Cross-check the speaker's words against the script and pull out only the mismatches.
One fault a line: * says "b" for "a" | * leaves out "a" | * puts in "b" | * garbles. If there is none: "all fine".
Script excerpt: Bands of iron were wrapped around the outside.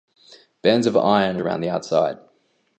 * leaves out "were wrapped"